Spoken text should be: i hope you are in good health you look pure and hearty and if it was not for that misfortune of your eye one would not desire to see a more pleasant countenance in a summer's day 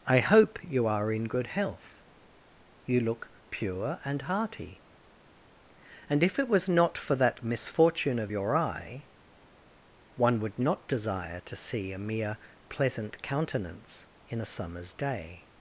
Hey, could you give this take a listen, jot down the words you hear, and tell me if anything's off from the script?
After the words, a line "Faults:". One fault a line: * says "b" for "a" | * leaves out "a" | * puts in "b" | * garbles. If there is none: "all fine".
i hope you are in good health you look pure and hearty and if it was not for that misfortune of your eye one would not desire to see a mere pleasant countenance in a summer's day
Faults:
* says "mere" for "more"